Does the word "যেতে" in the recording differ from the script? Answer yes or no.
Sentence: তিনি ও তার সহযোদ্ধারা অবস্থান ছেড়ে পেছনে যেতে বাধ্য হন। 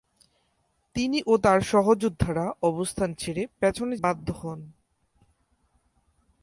yes